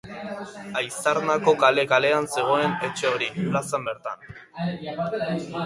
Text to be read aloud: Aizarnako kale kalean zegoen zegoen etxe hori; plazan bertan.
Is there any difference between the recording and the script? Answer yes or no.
yes